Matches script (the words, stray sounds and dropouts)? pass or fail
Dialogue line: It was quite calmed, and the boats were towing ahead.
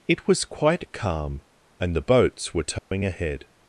fail